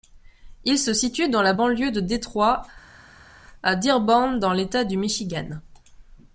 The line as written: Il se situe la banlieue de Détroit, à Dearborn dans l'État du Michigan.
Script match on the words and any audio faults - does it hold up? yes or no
no